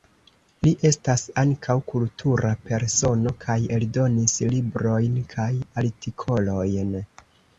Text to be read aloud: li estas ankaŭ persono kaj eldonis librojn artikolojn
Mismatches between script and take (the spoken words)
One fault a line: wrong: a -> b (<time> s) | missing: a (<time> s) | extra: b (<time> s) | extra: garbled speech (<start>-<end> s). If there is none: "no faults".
extra: kultura (1.9 s)
extra: kaj (5.4 s)